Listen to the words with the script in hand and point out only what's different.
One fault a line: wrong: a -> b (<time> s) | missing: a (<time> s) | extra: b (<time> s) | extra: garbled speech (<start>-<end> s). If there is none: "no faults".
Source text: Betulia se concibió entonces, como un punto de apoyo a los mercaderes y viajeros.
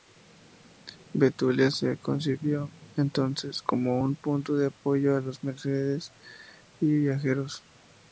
no faults